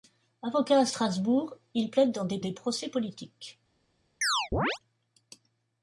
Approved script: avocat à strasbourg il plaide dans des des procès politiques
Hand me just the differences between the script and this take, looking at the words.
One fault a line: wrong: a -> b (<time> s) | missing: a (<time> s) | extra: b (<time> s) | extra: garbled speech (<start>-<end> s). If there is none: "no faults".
no faults